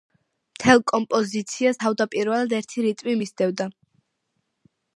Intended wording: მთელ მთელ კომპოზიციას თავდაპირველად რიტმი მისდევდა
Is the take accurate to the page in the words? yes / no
no